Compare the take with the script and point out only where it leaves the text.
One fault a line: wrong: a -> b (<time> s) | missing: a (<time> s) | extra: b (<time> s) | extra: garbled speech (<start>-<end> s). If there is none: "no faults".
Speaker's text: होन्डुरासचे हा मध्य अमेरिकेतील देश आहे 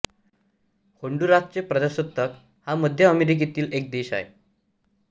extra: प्रजासत्ताक (1.6 s)
extra: एक (3.7 s)